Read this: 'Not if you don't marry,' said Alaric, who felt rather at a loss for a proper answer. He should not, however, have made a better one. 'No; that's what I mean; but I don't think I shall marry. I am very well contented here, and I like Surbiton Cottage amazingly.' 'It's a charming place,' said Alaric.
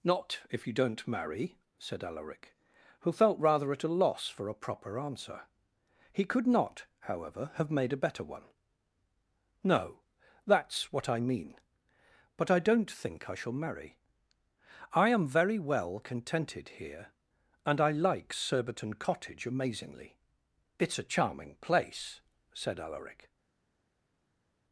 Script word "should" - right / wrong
wrong